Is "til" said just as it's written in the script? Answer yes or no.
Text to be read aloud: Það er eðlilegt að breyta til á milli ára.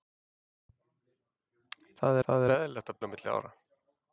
no